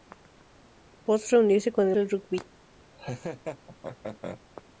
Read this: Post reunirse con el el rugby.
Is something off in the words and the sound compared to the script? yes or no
yes